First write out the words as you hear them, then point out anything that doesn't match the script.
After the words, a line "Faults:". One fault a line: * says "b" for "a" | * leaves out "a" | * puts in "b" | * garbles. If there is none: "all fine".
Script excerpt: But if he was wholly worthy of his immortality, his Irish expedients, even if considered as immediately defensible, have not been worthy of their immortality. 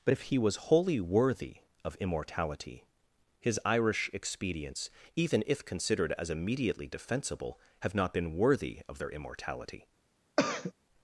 But if he was wholly worthy of immortality, his Irish expedients, even if considered as immediately defensible, have not been worthy of their immortality.
Faults:
* leaves out "his"